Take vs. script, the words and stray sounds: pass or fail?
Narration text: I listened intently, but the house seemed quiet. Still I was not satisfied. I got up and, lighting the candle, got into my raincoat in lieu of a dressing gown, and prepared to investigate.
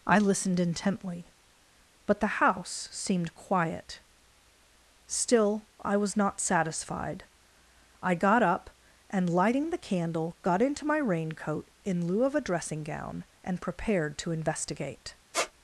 fail